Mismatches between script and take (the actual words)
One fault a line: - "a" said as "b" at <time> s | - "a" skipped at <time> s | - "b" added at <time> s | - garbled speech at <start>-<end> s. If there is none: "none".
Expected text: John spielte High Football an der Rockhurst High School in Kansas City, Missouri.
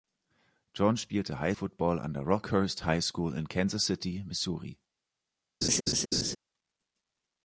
none